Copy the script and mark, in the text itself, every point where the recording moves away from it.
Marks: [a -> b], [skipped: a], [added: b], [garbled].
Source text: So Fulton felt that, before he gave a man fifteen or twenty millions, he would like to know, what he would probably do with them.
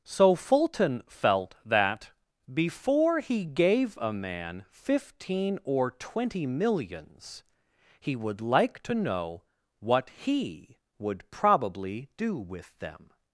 So Fulton felt that, before he gave a man fifteen or twenty millions, he would like to know, what he would probably do with them.